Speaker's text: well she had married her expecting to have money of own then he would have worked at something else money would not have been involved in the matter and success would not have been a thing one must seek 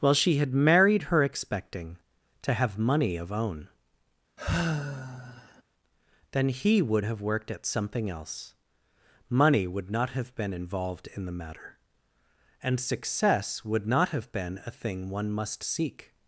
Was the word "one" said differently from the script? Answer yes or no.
no